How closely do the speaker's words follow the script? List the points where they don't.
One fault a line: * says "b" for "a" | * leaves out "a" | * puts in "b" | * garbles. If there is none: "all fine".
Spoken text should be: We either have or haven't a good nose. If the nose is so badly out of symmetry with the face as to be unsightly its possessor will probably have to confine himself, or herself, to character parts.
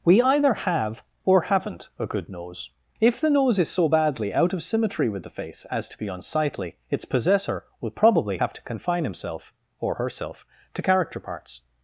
all fine